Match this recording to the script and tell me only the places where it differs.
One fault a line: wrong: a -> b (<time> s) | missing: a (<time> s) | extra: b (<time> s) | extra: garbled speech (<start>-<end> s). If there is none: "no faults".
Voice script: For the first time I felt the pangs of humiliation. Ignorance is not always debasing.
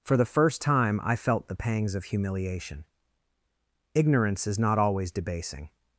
no faults